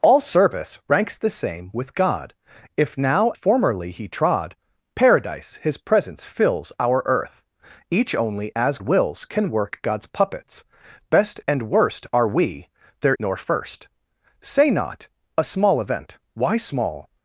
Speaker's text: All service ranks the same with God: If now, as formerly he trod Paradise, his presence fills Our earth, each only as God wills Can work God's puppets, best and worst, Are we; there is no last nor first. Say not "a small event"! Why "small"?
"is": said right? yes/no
no